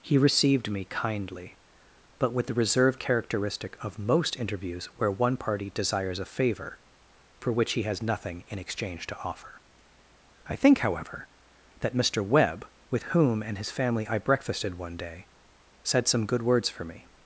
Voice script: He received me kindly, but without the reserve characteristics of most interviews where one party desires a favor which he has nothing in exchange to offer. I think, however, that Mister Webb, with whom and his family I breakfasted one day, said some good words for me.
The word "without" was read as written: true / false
false